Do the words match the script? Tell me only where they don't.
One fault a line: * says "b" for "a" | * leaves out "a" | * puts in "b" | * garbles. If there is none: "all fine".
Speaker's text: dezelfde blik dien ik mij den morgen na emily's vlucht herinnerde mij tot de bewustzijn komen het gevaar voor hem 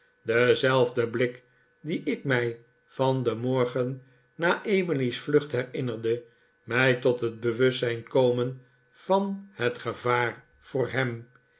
* puts in "van"
* says "het" for "de"
* puts in "van"